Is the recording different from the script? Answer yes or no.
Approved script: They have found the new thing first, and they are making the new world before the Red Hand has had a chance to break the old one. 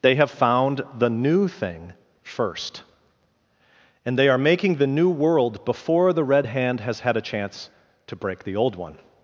no